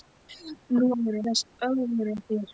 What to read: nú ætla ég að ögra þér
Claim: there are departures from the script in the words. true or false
true